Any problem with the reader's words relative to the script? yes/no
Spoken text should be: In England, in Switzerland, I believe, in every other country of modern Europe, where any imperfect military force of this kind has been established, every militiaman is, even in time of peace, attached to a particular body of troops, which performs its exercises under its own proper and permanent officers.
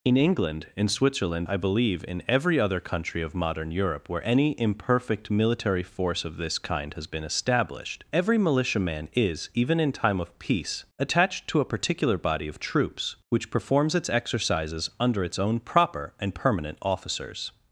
no